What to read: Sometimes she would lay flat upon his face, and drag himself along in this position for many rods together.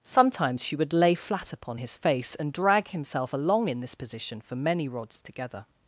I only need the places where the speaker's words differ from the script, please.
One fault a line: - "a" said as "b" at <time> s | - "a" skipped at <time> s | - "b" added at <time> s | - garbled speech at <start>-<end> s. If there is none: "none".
none